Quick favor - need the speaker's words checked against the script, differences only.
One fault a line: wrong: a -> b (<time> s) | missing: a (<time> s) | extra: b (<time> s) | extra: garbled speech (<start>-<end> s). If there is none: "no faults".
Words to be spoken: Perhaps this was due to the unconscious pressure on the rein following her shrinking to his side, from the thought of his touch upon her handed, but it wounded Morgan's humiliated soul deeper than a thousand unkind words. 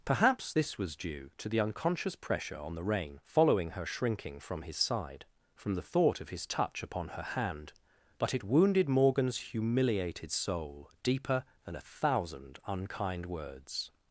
wrong: to -> from (4.4 s)
wrong: handed -> hand (7.2 s)